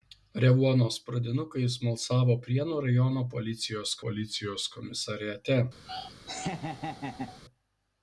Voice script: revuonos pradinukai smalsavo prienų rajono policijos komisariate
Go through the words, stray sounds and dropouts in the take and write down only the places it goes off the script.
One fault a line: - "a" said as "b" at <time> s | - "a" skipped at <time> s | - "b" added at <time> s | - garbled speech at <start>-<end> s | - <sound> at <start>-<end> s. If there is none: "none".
- "policijos" added at 4.1 s
- laugh at 5.9-7.4 s